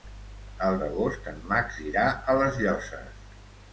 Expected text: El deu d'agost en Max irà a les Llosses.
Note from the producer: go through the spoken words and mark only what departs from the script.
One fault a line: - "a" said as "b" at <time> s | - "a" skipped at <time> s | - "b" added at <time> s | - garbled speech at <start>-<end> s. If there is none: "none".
- "deu" skipped at 0.8 s